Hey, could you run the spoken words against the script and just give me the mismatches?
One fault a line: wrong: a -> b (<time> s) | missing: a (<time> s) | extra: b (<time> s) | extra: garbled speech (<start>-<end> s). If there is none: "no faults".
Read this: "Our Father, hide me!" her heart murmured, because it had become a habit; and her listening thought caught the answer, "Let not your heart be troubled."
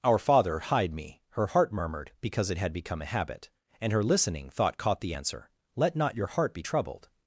no faults